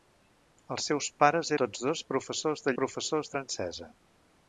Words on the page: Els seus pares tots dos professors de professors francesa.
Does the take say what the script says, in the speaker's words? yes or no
yes